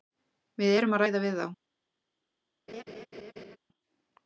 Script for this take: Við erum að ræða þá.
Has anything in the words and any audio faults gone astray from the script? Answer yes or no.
yes